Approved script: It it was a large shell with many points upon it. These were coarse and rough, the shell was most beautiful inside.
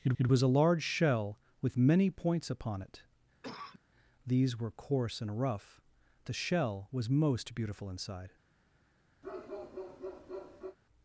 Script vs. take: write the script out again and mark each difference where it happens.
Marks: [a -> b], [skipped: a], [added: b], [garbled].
It it was a large shell with many points upon it. These were coarse and rough, the shell was most beautiful inside.